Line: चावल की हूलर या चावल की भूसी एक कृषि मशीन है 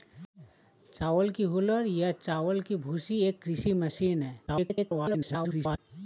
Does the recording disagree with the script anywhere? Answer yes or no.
yes